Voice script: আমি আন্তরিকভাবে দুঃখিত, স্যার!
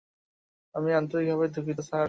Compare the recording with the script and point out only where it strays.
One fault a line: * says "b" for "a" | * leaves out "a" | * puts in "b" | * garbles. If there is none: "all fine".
all fine